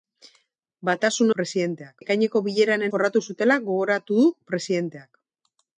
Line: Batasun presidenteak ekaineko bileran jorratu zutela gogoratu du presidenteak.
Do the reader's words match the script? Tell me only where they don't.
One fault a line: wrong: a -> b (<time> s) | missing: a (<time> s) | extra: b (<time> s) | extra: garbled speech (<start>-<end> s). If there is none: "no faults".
no faults